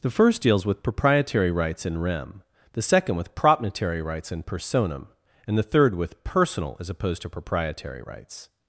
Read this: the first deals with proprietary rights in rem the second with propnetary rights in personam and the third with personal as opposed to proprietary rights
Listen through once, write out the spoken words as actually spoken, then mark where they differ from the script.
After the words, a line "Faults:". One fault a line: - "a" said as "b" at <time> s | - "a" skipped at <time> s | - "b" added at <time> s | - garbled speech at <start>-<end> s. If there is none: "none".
the first deals with proprietary rights in rem the second with propnetary rights in personam and the third with personal as opposed to proprietary rights
Faults:
none